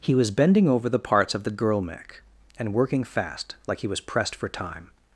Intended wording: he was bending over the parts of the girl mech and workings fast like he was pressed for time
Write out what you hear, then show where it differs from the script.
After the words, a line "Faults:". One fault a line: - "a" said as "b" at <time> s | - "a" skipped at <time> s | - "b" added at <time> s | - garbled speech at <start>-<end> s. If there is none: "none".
he was bending over the parts of the girl mech and working fast like he was pressed for time
Faults:
- "workings" said as "working" at 2.7 s